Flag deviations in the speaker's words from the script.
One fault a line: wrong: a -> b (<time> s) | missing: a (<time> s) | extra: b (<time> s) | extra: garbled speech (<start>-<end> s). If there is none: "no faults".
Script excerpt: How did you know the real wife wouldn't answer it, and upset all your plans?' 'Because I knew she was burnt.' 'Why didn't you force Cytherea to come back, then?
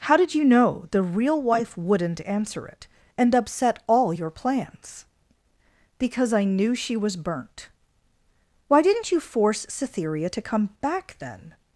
no faults